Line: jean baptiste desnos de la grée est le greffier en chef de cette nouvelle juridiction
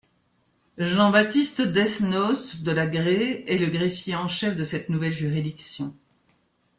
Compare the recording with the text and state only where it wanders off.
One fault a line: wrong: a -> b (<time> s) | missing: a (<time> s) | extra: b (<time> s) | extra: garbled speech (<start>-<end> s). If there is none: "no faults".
no faults